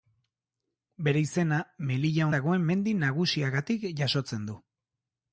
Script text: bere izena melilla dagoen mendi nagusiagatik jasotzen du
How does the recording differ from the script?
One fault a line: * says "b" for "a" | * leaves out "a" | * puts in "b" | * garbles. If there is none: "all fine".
all fine